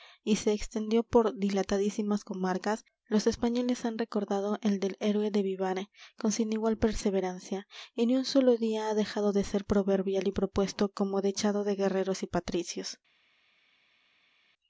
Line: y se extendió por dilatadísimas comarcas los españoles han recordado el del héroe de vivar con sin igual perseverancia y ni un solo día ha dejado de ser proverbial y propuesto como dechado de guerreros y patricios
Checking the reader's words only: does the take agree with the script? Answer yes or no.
yes